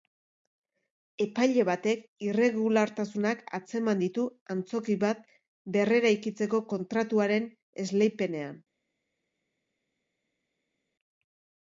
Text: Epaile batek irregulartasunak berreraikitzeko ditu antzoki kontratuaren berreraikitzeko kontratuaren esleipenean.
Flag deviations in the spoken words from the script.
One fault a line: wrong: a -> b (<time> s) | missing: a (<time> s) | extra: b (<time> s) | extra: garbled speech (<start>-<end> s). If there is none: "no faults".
wrong: berreraikitzeko -> atzeman (3.6 s)
wrong: kontratuaren -> bat (5.1 s)